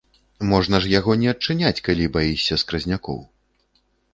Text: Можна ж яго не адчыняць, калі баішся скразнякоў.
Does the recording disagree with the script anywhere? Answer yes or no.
no